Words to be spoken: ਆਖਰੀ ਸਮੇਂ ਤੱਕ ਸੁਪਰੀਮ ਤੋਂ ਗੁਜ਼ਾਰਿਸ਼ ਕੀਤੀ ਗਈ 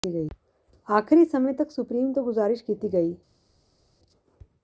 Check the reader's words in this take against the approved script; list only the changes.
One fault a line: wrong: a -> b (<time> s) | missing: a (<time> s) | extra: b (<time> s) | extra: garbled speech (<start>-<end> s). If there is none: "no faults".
no faults